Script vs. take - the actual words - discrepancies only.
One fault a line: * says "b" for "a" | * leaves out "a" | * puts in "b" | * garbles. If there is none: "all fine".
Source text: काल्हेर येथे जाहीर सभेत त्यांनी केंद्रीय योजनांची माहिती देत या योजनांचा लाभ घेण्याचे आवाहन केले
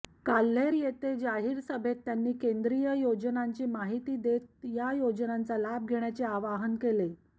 all fine